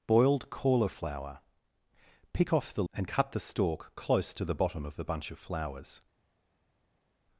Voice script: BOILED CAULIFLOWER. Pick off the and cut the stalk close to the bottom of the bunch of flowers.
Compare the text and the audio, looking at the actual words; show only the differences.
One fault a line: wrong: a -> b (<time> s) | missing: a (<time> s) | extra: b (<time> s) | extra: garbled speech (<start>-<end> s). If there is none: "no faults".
no faults